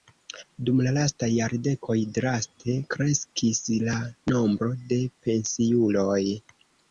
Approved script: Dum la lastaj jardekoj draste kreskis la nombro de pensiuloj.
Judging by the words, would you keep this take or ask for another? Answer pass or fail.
pass